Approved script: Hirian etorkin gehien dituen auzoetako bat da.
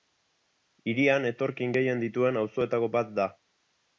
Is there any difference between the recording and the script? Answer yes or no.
no